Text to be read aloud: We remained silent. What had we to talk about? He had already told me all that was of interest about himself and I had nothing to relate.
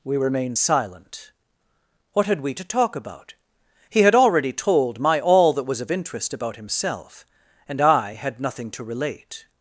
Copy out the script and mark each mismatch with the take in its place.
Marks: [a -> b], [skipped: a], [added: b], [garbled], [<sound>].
We remained silent. What had we to talk about? He had already told [me -> my] all that was of interest about himself and I had nothing to relate.